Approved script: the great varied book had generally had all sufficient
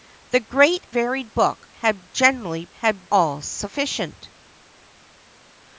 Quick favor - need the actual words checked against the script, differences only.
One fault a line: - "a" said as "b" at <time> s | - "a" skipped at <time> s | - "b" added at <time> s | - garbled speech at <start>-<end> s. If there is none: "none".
none